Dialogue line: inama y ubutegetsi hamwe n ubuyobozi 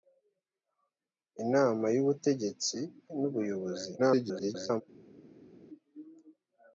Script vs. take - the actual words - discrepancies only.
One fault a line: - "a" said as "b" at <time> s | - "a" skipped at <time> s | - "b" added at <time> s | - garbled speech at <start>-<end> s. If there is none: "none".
- "hamwe" skipped at 2.8 s
- garbled speech at 4.0-4.8 s